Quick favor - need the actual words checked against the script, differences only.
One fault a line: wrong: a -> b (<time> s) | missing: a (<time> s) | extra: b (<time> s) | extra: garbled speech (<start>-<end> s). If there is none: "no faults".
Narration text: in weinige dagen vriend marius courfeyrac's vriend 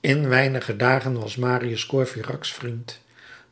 wrong: vriend -> was (1.2 s)